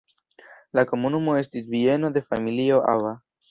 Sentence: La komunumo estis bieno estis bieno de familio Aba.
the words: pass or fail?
fail